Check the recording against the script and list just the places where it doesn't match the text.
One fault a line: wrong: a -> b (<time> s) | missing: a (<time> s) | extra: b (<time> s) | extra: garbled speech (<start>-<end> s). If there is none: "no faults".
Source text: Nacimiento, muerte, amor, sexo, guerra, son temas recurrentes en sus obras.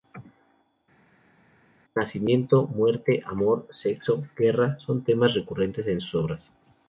no faults